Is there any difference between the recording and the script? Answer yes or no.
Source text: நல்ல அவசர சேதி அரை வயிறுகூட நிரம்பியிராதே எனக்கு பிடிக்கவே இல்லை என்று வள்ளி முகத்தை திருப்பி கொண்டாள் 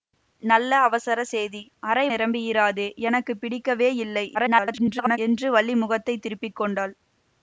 yes